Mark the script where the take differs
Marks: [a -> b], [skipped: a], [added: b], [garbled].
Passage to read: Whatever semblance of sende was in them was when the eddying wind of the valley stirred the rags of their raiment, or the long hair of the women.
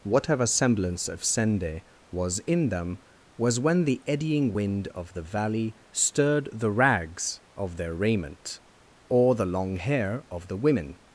Whatever semblance of sende was in them was when the eddying wind of the valley stirred the rags of their raiment, or the long hair of the women.